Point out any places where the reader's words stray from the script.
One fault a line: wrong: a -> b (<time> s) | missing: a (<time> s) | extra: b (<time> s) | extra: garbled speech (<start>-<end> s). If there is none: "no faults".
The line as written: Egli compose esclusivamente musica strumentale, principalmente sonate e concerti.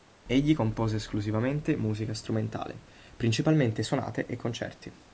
no faults